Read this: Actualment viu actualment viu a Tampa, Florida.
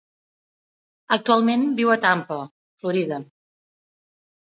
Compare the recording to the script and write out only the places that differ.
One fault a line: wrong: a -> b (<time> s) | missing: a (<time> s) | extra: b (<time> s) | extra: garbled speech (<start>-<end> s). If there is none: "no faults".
missing: actualment viu (1.9 s)